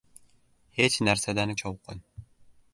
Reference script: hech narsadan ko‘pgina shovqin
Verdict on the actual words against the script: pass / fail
fail